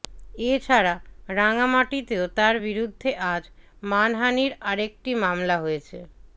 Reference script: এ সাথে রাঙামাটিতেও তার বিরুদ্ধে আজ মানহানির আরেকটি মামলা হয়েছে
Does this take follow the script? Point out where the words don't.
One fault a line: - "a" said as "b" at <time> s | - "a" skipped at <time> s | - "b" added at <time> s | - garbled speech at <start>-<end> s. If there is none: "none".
- "সাথে" said as "ছাড়া" at 0.7 s